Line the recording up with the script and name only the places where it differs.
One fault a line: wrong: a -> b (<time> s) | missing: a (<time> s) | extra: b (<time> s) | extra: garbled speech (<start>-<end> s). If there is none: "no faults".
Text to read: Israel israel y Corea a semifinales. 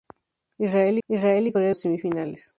no faults